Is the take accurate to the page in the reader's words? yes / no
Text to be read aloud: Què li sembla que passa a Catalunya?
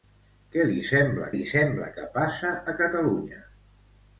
no